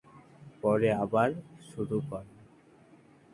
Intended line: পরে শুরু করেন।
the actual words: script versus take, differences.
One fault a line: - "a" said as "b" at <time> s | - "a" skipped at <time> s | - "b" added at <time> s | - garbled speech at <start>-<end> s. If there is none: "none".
- "আবার" added at 1.0 s